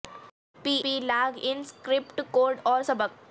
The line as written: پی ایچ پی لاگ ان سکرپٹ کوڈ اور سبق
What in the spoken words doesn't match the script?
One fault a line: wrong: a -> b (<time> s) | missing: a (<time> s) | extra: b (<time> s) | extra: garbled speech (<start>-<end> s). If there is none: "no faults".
missing: ایچ (0.8 s)